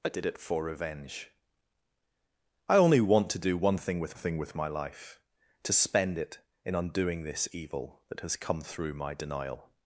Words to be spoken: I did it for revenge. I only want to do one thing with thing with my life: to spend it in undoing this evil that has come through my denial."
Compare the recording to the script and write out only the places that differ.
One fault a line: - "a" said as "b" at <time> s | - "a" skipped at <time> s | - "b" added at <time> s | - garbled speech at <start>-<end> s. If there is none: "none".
none